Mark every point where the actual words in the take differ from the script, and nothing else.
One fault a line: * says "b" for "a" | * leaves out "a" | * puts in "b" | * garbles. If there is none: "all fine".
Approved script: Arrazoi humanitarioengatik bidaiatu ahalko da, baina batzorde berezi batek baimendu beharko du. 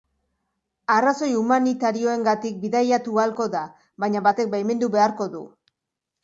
* leaves out "batzorde berezi"